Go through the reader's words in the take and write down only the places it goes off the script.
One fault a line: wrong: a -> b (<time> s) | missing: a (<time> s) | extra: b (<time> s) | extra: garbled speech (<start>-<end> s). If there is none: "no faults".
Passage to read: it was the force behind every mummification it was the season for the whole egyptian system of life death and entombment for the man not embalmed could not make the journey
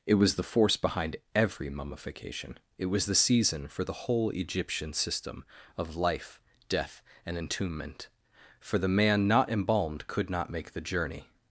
no faults